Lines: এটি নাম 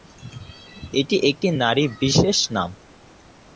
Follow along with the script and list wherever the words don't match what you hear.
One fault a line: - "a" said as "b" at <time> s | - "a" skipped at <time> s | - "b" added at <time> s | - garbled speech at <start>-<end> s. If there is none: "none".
- "একটি নারী বিশেষ" added at 1.3 s